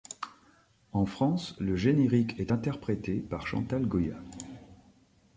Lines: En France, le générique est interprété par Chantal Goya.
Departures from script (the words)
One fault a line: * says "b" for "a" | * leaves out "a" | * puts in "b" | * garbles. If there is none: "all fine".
all fine